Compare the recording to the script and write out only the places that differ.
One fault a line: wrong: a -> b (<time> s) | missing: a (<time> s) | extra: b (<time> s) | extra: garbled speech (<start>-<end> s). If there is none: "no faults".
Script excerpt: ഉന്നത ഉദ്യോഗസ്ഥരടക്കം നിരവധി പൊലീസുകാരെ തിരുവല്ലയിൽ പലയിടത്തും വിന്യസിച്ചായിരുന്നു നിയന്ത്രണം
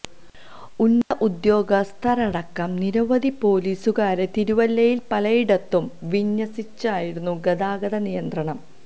extra: ഗതാഗത (7.5 s)